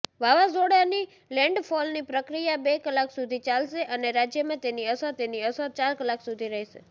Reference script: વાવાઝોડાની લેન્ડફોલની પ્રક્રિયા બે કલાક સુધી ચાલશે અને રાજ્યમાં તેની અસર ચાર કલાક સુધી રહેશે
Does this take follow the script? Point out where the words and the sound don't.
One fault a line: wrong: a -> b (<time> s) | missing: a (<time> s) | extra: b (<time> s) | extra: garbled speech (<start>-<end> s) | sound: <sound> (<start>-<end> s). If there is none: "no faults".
extra: તેની અસર (5.2 s)